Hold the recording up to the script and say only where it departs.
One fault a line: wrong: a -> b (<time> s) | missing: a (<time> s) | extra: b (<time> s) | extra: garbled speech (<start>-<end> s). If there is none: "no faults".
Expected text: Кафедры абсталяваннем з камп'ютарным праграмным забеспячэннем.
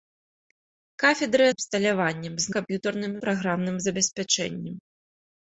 no faults